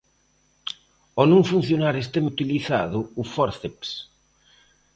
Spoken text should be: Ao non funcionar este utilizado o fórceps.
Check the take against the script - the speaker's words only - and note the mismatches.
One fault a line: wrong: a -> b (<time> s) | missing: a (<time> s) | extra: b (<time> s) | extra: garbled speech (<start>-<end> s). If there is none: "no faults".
no faults